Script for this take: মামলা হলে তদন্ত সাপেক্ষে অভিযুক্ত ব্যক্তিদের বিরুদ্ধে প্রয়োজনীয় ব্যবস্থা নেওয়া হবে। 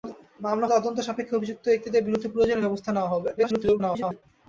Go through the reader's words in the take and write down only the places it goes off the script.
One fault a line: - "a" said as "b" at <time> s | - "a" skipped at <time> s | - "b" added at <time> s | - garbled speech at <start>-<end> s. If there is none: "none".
- "হলে" skipped at 0.7 s
- garbled speech at 3.4-4.2 s